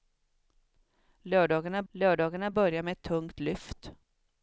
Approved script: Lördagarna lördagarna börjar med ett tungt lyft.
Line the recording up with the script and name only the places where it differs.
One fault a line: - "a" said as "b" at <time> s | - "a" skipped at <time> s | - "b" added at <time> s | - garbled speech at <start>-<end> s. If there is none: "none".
none